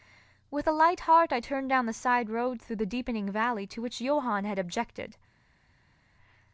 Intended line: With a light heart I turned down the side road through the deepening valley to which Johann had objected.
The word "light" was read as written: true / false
true